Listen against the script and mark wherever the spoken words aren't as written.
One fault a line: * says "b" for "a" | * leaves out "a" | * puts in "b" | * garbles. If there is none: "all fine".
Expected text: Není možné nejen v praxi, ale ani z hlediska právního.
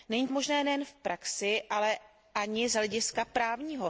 all fine